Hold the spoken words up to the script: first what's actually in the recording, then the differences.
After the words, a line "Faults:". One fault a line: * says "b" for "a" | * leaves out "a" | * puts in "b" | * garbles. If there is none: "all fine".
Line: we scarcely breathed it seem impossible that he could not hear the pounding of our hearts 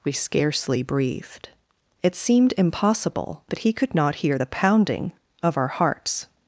we scarcely breathed it seemed impossible that he could not hear the pounding of our hearts
Faults:
* says "seemed" for "seem"